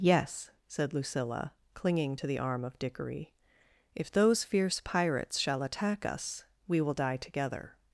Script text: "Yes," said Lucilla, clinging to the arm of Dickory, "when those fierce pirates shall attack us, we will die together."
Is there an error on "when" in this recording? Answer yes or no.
yes